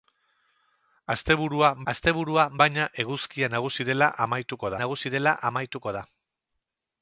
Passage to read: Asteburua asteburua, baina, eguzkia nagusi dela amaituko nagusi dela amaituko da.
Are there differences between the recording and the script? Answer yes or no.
no